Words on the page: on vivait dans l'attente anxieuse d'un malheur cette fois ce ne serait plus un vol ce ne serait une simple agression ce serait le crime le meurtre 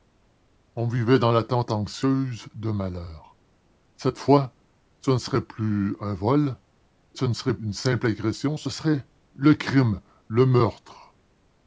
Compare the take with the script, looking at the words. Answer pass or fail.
pass